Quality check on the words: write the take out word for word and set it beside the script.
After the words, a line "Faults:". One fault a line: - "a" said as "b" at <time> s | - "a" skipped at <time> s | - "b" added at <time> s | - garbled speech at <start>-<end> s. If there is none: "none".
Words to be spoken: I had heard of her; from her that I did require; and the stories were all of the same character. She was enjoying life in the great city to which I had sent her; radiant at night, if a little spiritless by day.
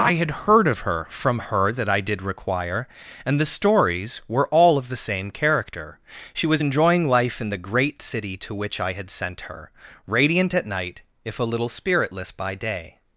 I had heard of her; from her that I did require; and the stories were all of the same character. She was enjoying life in the great city to which I had sent her; radiant at night, if a little spiritless by day.
Faults:
none